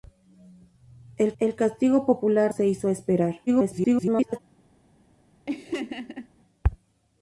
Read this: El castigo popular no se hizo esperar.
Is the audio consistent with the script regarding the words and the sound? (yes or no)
no